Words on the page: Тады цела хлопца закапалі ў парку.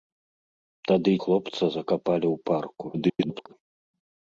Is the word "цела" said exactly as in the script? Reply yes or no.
no